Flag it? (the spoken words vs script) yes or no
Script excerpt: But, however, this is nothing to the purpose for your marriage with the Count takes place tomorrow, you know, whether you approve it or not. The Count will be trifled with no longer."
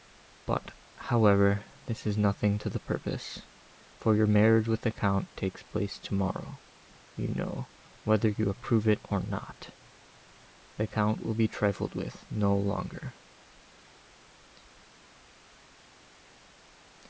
no